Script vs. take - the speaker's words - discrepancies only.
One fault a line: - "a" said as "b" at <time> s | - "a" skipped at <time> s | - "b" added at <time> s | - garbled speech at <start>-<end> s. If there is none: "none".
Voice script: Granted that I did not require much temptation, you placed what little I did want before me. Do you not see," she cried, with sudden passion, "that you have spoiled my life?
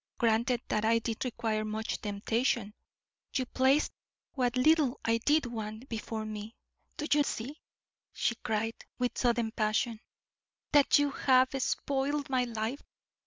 - "not" skipped at 1.2 s
- "not" skipped at 7.2 s